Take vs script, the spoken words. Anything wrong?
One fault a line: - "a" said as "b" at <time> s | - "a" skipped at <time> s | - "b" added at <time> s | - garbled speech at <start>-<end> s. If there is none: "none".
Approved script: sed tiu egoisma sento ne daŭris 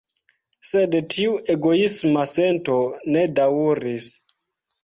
none